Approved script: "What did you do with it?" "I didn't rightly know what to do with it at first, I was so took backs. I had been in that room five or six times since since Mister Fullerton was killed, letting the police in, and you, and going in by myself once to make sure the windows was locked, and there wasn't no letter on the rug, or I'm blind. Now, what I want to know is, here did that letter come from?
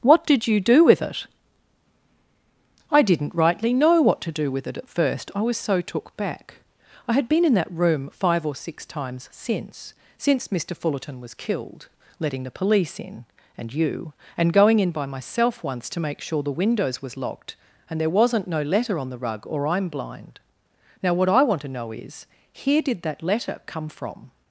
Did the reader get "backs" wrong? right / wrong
wrong